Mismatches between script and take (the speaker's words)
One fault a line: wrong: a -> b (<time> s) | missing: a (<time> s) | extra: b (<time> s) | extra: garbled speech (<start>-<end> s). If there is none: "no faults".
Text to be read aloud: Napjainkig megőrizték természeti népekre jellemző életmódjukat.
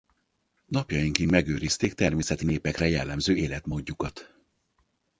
no faults